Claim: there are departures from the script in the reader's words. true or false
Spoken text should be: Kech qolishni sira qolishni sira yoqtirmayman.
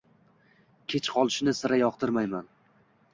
true